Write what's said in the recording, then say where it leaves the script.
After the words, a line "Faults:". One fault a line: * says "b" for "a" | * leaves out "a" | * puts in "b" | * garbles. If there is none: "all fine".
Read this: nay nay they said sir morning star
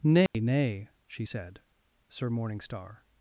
nay nay she said sir morning star
Faults:
* says "she" for "they"